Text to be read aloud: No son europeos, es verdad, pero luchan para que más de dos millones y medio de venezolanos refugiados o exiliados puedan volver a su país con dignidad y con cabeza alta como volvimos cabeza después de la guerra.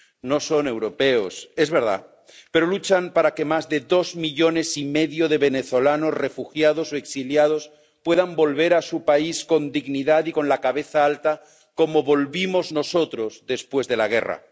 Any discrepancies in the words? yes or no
yes